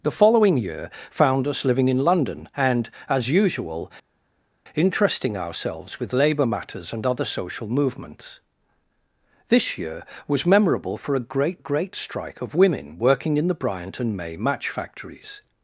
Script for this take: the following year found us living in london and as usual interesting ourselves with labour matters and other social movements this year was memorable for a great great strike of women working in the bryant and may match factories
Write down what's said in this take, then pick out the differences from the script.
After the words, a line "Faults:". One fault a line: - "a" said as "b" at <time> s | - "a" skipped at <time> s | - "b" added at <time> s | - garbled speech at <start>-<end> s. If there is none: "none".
the following year found us living in london and as usual interesting ourselves with labour matters and other social movements this year was memorable for a great great strike of women working in the bryant and may match factories
Faults:
none